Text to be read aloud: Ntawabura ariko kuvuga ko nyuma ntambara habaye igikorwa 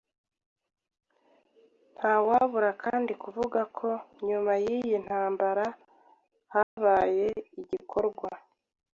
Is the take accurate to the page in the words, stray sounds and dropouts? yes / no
no